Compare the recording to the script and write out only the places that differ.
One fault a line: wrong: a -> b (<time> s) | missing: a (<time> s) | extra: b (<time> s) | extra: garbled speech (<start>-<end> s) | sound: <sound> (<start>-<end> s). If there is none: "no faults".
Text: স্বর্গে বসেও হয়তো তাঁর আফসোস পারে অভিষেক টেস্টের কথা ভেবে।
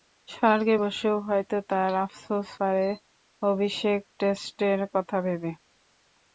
no faults